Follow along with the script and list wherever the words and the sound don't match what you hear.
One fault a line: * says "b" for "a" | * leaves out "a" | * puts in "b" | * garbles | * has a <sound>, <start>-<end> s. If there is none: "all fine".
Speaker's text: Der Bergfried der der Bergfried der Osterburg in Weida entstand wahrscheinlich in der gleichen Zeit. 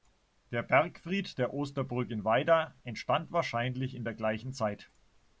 * leaves out "der Bergfried der"